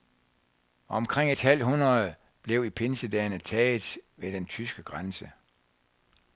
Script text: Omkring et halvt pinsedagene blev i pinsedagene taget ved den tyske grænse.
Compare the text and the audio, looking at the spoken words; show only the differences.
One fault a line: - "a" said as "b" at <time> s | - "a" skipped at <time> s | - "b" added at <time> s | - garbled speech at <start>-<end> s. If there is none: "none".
- "pinsedagene" said as "hundrede" at 1.6 s